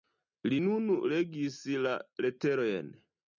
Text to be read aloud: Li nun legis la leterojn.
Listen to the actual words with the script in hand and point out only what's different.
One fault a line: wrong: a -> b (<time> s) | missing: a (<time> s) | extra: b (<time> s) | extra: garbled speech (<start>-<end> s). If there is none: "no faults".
no faults